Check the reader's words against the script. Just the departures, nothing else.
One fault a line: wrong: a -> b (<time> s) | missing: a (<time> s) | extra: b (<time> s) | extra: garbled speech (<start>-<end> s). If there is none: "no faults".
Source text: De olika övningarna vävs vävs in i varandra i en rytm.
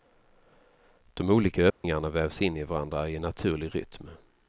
missing: vävs (2.4 s)
extra: naturlig (3.2 s)